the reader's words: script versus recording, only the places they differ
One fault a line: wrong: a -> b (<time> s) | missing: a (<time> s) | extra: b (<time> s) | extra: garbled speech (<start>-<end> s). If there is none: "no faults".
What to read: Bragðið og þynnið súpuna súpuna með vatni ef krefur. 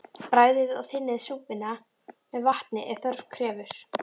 missing: súpuna (1.8 s)
extra: þörf (3.1 s)